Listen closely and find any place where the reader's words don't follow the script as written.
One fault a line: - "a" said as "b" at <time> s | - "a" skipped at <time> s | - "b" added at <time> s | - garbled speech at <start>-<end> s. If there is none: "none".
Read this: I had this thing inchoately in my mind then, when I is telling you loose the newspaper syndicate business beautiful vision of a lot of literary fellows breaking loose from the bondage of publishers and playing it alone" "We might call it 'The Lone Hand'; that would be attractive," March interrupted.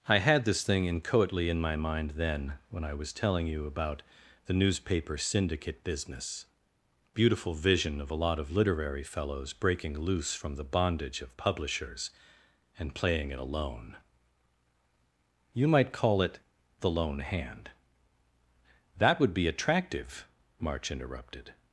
- "is" said as "was" at 2.9 s
- "loose" said as "about" at 3.7 s
- "We" said as "You" at 15.5 s